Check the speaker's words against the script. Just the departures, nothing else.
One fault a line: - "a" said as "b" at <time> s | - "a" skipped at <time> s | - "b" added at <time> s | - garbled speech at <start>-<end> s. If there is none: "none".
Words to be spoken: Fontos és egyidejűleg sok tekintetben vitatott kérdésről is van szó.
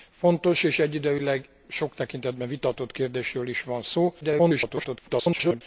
- garbled speech at 4.2-5.6 s